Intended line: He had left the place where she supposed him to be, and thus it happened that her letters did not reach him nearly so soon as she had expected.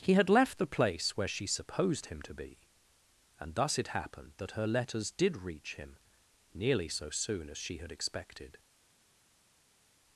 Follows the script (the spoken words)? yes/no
no